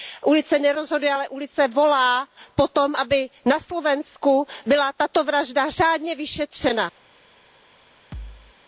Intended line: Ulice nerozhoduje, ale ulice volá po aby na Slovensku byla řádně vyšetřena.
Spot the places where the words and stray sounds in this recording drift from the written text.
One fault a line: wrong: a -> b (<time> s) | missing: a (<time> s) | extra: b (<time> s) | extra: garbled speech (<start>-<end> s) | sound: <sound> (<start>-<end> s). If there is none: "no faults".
extra: tom (2.7 s)
extra: tato vražda (4.9 s)
sound: thud (8.1-8.5 s)